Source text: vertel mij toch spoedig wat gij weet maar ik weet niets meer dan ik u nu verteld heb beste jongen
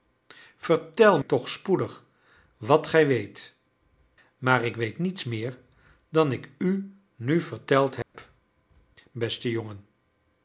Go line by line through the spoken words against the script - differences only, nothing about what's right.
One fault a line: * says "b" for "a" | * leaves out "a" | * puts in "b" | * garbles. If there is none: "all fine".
* leaves out "mij"